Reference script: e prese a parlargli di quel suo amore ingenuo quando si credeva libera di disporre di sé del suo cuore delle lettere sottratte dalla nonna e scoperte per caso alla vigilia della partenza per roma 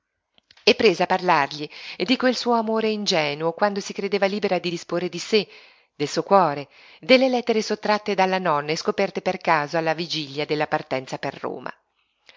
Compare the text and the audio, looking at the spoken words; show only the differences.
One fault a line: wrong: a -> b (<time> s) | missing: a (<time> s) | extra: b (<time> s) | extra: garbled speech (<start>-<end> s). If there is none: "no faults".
no faults